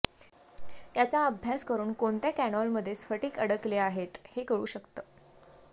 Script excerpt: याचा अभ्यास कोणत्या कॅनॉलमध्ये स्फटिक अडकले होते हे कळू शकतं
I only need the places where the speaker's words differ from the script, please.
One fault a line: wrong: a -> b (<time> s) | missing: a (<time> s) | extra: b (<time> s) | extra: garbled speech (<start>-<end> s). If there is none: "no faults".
extra: करून (1.6 s)
wrong: होते -> आहेत (3.8 s)